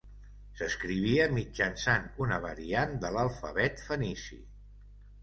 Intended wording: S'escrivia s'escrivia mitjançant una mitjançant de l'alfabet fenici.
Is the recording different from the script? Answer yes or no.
yes